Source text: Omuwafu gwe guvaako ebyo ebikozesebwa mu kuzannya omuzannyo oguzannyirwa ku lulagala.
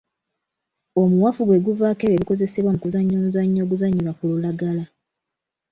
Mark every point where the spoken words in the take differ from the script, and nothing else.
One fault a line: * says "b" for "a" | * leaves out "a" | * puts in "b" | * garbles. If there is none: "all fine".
all fine